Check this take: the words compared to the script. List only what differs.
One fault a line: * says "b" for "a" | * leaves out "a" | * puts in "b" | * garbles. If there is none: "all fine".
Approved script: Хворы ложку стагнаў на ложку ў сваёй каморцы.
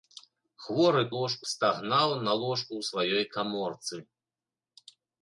all fine